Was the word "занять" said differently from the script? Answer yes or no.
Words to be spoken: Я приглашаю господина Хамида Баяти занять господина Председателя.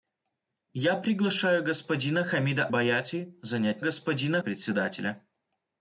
no